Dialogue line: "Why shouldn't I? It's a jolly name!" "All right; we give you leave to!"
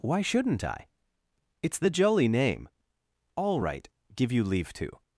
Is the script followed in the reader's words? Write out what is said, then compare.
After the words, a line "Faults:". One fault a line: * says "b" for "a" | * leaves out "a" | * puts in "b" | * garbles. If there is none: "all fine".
"Why shouldn't I? It's the jolly name!" "All right; give you leave to!"
Faults:
* says "the" for "a"
* leaves out "we"